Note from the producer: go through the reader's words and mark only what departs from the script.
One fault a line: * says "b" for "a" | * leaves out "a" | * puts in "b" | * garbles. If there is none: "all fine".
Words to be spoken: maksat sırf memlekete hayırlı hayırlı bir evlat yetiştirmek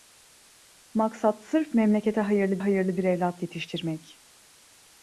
all fine